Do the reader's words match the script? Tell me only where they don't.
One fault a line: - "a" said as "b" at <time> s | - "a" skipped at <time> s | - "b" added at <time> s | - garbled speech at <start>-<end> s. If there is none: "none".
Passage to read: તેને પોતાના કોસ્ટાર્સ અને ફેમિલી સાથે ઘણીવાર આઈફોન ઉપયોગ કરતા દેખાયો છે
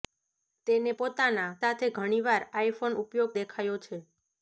- "કોસ્ટાર્સ અને ફેમિલી" skipped at 1.5 s
- "કરતા" skipped at 3.4 s